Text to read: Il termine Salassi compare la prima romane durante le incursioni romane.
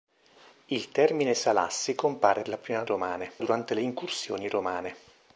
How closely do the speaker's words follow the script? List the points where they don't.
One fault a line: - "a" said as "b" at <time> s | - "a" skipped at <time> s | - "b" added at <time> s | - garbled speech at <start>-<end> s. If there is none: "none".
none